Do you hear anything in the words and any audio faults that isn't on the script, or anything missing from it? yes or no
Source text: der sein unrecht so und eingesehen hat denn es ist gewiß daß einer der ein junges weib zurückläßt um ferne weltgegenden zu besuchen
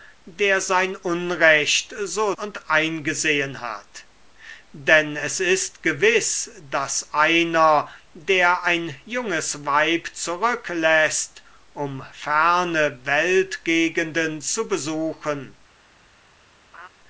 yes